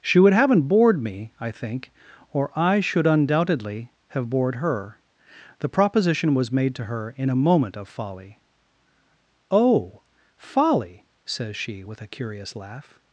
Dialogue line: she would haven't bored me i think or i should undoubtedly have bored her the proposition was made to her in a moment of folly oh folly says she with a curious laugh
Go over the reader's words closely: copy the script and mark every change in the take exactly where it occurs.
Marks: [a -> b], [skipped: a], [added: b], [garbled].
she would haven't bored me i think or i should undoubtedly have bored her the proposition was made to her in a moment of folly oh folly says she with a curious laugh